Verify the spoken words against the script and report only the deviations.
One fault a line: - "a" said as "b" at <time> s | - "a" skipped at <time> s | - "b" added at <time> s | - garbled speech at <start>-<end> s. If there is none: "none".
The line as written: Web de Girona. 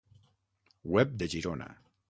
none